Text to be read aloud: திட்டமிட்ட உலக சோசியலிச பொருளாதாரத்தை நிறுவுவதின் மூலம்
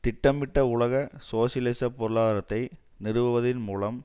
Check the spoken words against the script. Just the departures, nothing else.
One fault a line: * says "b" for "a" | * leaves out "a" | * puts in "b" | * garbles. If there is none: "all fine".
all fine